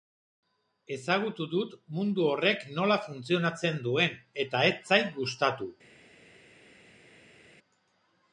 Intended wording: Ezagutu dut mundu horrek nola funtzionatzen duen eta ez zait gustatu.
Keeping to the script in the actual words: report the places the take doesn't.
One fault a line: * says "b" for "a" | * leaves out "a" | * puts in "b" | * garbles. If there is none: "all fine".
all fine